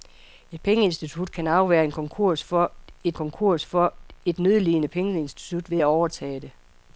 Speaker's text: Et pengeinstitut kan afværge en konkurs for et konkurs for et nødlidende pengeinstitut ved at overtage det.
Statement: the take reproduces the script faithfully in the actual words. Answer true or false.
true